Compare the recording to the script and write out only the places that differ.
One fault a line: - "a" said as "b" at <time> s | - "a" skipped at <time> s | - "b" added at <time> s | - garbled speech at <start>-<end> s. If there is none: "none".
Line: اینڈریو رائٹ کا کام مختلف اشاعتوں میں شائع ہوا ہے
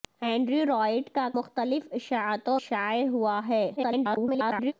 - "کام" skipped at 1.3 s
- "میں" skipped at 2.6 s
- garbled speech at 3.8-4.7 s